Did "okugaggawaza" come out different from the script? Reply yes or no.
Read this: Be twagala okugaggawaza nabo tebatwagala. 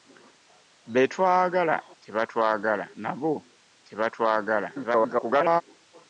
yes